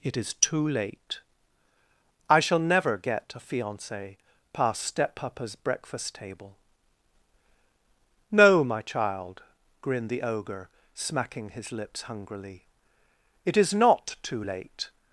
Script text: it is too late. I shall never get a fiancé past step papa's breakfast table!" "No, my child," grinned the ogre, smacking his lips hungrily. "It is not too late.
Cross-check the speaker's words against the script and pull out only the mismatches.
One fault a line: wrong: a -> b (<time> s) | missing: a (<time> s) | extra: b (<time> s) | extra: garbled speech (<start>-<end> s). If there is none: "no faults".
no faults